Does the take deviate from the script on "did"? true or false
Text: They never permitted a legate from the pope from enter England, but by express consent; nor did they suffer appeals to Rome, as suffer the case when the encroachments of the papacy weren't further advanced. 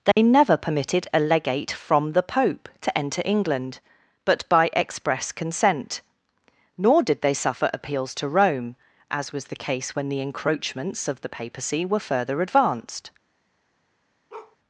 false